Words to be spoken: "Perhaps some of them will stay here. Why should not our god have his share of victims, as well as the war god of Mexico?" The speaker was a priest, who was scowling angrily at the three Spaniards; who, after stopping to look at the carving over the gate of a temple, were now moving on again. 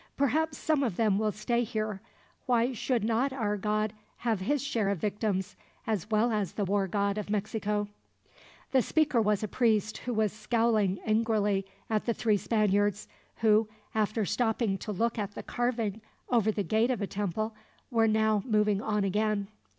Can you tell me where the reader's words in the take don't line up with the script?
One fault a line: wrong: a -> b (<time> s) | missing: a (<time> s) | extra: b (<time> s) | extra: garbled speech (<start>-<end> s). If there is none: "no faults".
no faults